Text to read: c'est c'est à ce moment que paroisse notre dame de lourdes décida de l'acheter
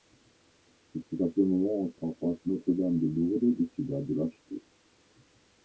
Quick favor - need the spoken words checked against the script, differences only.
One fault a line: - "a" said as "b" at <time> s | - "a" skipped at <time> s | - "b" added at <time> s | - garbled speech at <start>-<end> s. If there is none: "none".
none